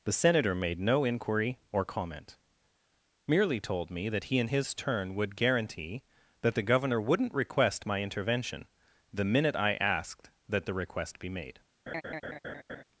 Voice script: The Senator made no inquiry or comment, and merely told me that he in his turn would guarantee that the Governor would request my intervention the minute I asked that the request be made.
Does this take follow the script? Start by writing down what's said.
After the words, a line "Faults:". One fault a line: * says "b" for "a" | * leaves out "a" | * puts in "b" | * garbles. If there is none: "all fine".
The Senator made no inquiry or comment, merely told me that he in his turn would guarantee that the Governor wouldn't request my intervention the minute I asked that the request be made.
Faults:
* leaves out "and"
* says "wouldn't" for "would"